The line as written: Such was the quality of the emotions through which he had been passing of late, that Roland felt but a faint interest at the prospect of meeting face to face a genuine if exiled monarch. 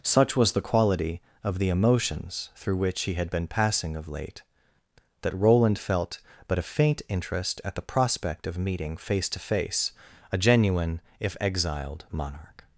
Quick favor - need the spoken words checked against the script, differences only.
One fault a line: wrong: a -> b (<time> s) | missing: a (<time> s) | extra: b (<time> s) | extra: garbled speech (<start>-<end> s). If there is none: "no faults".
no faults